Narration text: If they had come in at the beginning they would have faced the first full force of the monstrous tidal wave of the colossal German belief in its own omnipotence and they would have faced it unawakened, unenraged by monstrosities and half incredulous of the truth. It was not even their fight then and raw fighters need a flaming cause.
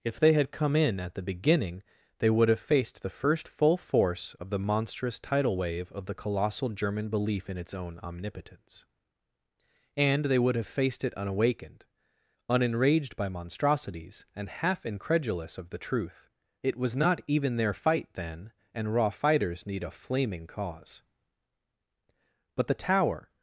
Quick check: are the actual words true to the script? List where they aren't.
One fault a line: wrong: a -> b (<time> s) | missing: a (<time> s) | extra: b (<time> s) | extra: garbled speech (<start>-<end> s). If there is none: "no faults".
extra: But the tower (22.5 s)